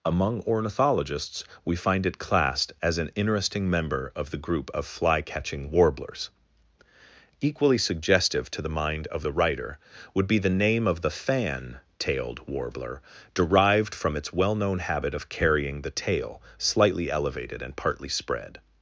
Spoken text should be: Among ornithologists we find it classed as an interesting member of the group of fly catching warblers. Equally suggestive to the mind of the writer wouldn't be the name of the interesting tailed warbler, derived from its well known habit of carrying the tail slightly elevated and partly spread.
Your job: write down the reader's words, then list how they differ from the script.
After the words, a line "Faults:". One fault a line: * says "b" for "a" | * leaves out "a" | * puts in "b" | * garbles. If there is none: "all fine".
Among ornithologists we find it classed as an interesting member of the group of fly catching warblers. Equally suggestive to the mind of the writer would be the name of the fan tailed warbler, derived from its well known habit of carrying the tail slightly elevated and partly spread.
Faults:
* says "would" for "wouldn't"
* says "fan" for "interesting"